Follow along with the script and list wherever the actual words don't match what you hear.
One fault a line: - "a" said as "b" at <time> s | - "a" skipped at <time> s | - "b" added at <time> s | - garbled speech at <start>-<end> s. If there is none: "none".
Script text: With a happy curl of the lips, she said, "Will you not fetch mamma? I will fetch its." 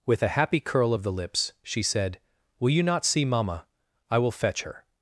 - "fetch" said as "see" at 3.0 s
- "its" said as "her" at 4.6 s